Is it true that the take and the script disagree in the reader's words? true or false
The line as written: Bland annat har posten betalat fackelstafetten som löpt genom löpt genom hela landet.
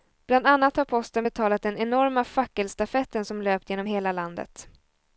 true